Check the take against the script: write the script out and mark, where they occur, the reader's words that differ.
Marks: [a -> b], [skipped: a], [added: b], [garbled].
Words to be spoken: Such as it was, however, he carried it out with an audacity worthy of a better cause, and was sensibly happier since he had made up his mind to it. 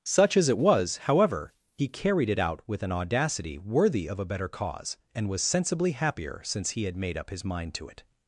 Such as it was, however, he carried it out with an audacity worthy of a better cause, and was sensibly happier since he had made up his mind to it.